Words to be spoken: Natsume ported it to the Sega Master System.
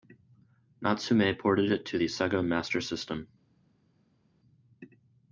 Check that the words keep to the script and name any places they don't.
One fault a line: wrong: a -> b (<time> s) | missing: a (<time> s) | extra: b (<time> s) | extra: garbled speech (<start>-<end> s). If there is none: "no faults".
no faults